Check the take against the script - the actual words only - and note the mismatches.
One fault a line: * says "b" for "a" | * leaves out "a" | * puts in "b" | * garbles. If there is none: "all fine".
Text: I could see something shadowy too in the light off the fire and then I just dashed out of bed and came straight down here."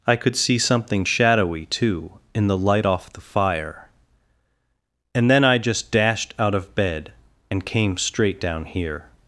all fine